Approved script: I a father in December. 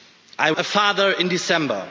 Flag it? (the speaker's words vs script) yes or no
no